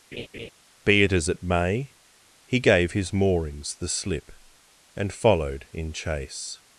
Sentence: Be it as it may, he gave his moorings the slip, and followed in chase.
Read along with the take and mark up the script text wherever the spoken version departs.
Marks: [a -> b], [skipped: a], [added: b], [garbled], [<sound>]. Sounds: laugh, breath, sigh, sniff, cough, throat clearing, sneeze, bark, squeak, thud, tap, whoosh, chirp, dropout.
[laugh] Be it as it may, he gave his moorings the slip, and followed in chase.